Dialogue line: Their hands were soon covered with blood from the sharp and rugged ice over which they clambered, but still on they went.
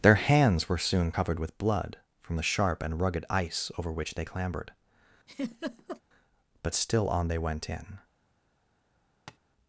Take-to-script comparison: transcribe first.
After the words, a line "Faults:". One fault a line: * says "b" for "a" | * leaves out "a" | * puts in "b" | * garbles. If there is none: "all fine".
Their hands were soon covered with blood from the sharp and rugged ice over which they clambered, but still on they went. In
Faults:
* puts in "In"